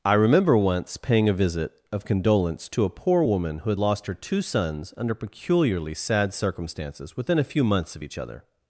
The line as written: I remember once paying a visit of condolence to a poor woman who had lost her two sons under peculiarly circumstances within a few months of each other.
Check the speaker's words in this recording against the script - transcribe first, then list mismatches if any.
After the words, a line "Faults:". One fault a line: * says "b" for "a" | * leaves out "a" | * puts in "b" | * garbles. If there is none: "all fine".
I remember once paying a visit of condolence to a poor woman who had lost her two sons under peculiarly sad circumstances within a few months of each other.
Faults:
* puts in "sad"